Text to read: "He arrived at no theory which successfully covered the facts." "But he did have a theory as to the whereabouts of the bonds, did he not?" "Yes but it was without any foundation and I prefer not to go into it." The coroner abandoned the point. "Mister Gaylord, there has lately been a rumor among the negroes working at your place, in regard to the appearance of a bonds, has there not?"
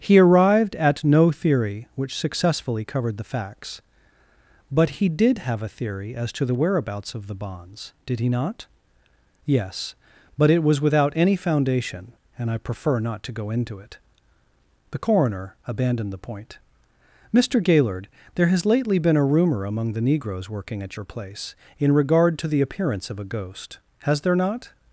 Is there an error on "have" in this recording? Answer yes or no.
no